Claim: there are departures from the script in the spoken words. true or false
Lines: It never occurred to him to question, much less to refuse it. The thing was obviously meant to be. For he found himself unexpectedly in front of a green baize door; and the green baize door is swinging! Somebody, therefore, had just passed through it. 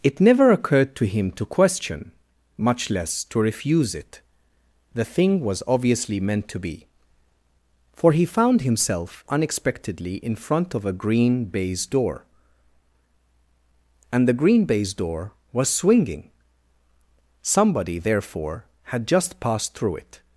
true